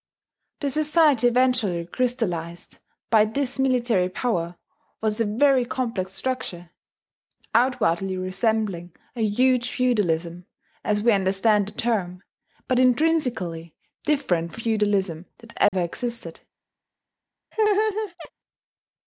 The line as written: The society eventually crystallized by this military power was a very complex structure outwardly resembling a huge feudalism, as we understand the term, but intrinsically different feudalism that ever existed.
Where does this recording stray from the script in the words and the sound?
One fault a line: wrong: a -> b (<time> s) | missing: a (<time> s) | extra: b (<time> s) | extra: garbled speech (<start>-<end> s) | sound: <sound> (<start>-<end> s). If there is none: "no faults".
sound: dropout (15.7-15.7 s)
sound: laugh (17.5-18.3 s)